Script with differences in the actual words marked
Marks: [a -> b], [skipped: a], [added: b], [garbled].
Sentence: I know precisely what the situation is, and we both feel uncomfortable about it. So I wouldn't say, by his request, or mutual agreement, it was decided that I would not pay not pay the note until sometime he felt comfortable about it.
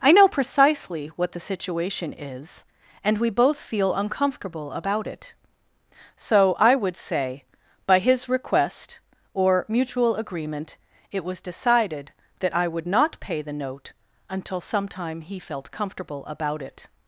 I know precisely what the situation is, and we both feel uncomfortable about it. So I [wouldn't -> would] say, by his request, or mutual agreement, it was decided that I would not pay [skipped: not pay] the note until sometime he felt comfortable about it.